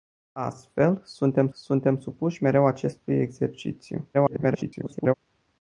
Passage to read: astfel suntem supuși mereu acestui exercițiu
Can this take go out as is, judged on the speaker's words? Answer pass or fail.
fail